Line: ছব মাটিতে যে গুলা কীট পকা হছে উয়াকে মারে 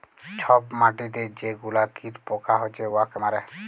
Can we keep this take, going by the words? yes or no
yes